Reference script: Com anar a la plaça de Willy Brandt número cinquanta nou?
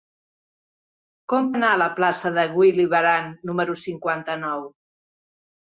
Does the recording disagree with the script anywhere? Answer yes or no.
no